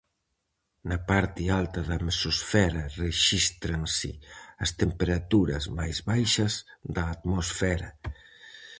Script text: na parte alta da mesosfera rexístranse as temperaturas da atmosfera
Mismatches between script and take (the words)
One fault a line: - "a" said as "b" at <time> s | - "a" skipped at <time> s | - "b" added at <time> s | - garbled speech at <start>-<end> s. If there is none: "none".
- "máis baixas" added at 5.8 s